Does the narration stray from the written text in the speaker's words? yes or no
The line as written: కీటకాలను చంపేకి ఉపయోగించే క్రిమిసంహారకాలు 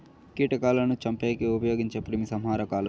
no